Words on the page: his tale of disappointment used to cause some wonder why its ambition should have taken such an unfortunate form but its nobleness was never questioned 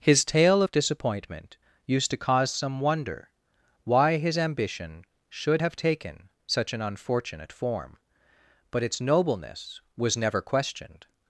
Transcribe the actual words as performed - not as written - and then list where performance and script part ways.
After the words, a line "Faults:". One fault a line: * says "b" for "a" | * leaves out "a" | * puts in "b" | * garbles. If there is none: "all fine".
his tale of disappointment used to cause some wonder why his ambition should have taken such an unfortunate form but its nobleness was never questioned
Faults:
* says "his" for "its"